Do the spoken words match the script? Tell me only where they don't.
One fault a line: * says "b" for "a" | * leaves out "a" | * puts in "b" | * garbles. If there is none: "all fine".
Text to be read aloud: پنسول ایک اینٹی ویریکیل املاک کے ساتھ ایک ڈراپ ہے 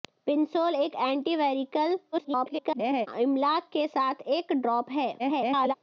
* garbles
* garbles